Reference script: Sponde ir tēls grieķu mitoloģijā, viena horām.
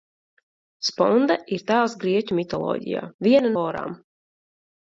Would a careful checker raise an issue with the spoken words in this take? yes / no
no